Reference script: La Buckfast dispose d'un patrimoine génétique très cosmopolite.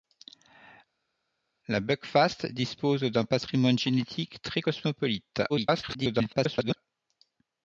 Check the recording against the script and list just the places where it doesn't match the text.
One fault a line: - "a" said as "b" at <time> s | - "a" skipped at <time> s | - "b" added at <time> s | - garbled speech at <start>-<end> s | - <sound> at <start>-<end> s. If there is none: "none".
- garbled speech at 5.5-6.8 s